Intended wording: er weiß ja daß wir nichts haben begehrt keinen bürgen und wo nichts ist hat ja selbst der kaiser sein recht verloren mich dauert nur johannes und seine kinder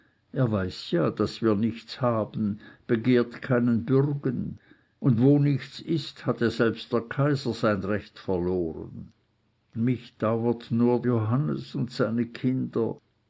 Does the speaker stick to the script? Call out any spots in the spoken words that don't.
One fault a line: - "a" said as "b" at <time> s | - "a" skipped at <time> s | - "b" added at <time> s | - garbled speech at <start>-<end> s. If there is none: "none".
none